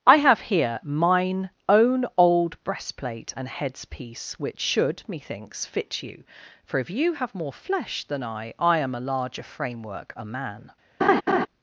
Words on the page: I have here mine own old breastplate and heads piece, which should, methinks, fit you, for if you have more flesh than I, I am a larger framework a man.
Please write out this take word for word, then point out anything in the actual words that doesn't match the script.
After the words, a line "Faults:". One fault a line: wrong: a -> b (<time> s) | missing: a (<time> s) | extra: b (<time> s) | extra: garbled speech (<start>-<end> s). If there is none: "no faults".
I have here mine own old breastplate and heads piece, which should, methinks, fit you, for if you have more flesh than I, I am a larger framework a man.
Faults:
no faults